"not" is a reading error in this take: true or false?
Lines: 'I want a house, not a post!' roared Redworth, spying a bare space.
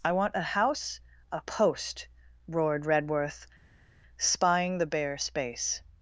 true